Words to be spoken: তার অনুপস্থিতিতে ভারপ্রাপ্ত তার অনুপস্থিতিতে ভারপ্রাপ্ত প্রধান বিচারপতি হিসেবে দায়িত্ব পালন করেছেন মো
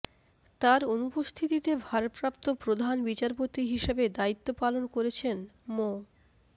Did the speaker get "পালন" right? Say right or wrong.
right